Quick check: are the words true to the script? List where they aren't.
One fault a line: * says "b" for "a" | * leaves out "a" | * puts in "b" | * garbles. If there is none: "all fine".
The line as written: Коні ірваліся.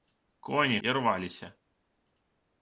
all fine